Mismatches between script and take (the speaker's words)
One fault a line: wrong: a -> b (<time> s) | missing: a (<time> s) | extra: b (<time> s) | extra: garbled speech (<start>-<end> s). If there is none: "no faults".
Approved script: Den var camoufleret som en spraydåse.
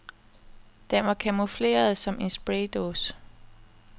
no faults